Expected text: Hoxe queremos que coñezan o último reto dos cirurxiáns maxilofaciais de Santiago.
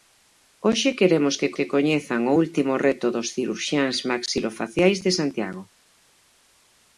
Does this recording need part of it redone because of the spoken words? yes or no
yes